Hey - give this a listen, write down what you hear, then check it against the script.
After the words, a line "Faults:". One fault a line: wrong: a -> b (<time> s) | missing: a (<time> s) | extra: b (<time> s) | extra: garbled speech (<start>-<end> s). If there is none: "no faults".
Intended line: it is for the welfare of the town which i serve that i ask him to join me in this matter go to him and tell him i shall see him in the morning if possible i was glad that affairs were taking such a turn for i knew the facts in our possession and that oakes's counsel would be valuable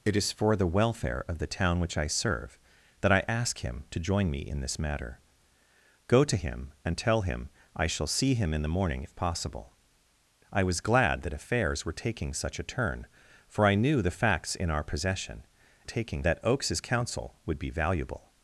it is for the welfare of the town which i serve that i ask him to join me in this matter go to him and tell him i shall see him in the morning if possible i was glad that affairs were taking such a turn for i knew the facts in our possession taking that oakes's counsel would be valuable
Faults:
wrong: and -> taking (15.8 s)